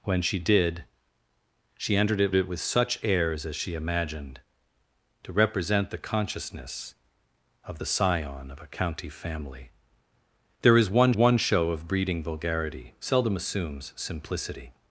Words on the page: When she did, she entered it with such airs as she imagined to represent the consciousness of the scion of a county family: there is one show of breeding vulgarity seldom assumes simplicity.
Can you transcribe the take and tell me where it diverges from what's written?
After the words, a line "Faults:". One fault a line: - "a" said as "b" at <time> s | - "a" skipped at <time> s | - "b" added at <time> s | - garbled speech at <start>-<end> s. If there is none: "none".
When she did, she entered it it with such airs as she imagined to represent the consciousness of the scion of a county family: there is one one show of breeding vulgarity seldom assumes simplicity.
Faults:
- "it" added at 2.3 s
- "one" added at 11.1 s